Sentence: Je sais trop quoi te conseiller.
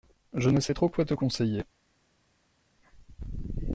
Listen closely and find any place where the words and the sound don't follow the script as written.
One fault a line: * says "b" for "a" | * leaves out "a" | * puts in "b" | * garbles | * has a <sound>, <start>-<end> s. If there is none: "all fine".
* puts in "ne"